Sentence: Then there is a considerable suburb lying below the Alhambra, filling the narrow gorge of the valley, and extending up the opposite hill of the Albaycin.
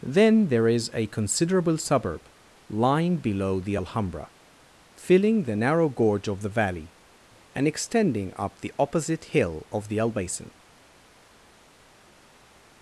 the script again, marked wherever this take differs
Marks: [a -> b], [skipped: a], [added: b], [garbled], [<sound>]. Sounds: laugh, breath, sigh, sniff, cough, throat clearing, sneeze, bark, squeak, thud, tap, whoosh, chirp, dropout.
Then there is a considerable suburb lying below the Alhambra, filling the narrow gorge of the valley, and extending up the opposite hill of the Albaycin.